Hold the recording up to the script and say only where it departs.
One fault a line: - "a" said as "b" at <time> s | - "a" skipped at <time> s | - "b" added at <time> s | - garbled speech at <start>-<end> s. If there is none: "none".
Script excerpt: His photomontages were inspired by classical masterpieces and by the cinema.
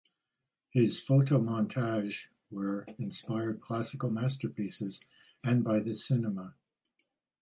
- "by" skipped at 3.6 s